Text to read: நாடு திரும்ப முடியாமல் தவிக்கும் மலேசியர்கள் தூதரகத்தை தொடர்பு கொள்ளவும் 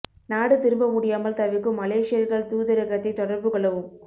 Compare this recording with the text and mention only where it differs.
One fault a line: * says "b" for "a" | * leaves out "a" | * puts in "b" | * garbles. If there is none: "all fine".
all fine